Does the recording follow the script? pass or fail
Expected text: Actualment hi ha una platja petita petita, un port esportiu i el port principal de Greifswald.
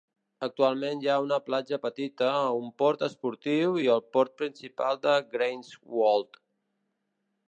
fail